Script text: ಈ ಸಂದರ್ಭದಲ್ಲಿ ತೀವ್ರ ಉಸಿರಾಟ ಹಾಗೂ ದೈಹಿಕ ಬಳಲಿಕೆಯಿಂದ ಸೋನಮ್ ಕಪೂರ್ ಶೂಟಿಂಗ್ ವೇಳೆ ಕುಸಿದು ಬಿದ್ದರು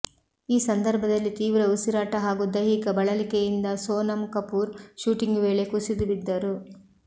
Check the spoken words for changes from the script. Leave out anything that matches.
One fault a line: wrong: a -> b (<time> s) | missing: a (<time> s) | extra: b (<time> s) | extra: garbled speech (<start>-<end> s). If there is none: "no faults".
no faults